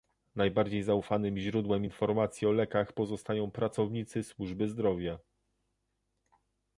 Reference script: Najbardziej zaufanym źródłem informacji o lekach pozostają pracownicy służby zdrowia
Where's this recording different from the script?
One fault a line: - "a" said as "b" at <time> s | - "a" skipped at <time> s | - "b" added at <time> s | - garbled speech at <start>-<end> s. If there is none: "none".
none